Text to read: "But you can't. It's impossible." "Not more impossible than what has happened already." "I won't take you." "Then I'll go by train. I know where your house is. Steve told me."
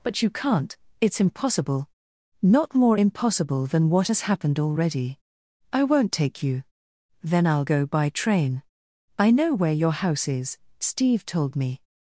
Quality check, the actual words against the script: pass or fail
pass